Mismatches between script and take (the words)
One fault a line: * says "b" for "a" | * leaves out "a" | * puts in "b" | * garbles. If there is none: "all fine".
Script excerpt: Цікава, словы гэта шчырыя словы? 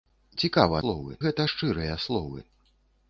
all fine